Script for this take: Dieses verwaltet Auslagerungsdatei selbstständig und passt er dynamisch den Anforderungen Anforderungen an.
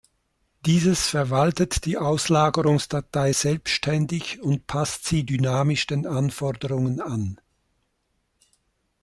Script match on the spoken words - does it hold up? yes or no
no